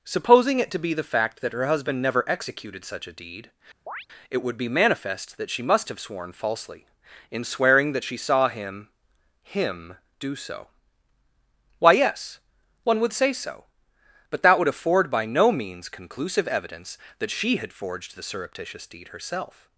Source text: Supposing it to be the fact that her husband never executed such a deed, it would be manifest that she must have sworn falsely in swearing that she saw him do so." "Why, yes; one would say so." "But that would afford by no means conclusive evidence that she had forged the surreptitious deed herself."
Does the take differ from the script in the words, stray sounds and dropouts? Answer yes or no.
yes